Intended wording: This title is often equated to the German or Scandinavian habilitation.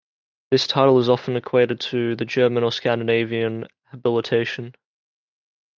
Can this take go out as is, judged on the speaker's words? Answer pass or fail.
pass